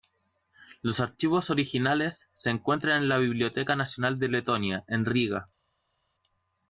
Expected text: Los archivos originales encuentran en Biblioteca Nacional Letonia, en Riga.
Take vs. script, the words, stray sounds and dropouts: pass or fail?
fail